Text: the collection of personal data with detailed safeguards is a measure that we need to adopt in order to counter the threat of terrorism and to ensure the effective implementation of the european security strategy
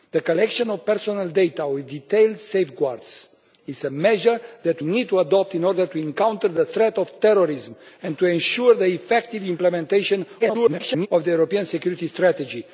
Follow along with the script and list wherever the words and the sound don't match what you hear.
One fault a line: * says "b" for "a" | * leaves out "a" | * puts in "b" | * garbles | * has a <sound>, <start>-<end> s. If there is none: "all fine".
* leaves out "we"
* garbles